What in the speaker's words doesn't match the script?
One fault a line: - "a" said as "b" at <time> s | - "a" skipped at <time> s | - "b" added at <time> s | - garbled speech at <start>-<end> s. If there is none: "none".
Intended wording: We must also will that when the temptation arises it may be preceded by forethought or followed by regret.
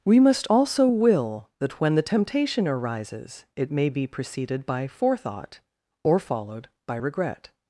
none